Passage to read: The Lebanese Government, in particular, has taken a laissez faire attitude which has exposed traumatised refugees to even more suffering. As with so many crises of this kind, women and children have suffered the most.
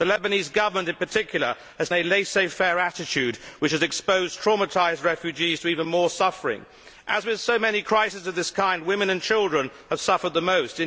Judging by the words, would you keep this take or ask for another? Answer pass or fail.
fail